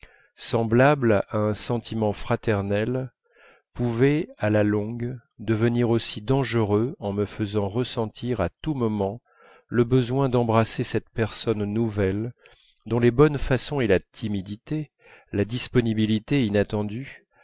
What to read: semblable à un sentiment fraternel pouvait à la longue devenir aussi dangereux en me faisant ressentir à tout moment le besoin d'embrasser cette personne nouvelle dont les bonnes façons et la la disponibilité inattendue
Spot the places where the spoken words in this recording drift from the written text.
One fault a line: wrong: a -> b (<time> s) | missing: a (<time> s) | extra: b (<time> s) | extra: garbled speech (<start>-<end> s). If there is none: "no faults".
extra: timidité (14.0 s)